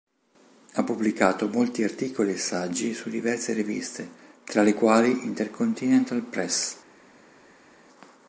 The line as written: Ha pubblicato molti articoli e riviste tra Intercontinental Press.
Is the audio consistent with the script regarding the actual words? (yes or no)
no